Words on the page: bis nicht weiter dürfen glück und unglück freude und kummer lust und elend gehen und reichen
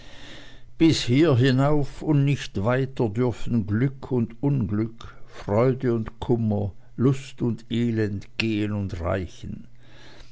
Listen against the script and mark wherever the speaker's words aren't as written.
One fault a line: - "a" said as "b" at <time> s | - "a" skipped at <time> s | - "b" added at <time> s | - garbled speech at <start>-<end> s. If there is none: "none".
- "hier hinauf und" added at 1.0 s